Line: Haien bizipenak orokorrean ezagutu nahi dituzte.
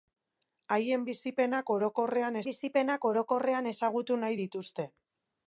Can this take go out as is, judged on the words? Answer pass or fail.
fail